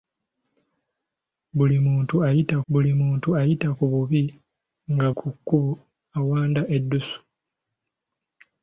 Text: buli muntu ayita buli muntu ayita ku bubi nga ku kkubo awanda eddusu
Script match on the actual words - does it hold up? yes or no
yes